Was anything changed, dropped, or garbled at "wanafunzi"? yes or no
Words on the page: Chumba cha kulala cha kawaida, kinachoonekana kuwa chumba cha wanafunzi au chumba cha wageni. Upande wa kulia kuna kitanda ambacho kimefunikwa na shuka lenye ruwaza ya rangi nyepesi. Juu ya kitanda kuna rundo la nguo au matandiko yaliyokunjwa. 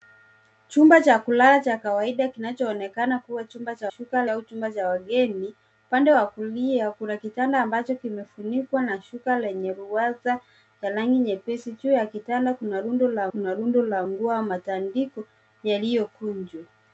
yes